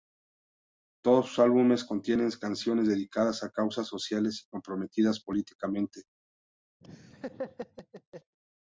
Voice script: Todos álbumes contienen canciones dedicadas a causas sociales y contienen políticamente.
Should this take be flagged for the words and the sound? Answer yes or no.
yes